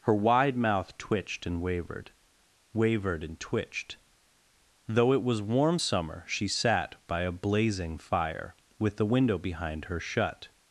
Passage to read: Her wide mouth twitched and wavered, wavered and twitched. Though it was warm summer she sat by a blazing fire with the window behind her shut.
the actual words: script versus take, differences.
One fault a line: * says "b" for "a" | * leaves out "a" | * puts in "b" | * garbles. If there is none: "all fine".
all fine